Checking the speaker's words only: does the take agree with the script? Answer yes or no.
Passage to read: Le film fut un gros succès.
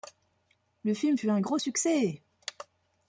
yes